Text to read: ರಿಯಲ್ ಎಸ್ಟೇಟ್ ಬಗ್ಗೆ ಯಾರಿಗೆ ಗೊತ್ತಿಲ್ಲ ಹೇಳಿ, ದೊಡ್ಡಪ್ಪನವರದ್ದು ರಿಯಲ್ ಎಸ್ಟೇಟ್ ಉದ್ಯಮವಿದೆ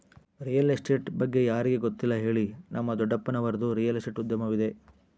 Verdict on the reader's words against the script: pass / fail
fail